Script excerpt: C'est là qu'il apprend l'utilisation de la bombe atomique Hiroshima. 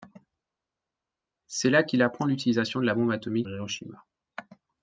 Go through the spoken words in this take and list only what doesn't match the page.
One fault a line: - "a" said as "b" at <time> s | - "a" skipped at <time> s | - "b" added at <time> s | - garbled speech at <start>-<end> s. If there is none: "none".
none